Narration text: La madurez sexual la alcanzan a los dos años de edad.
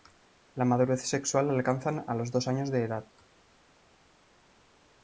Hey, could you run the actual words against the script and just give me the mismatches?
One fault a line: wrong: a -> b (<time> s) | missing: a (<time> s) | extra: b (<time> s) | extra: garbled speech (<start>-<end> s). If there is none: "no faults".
no faults